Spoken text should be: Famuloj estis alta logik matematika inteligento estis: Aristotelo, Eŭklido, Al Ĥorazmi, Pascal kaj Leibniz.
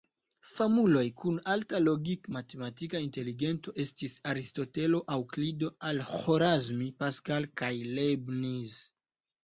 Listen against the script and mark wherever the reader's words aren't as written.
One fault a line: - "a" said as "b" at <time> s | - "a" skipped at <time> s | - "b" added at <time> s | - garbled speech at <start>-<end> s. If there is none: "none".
- "estis" said as "kun" at 1.2 s